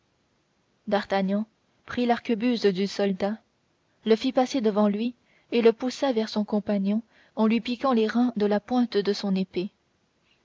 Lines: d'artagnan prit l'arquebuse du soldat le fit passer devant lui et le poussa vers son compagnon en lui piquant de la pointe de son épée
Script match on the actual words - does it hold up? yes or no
no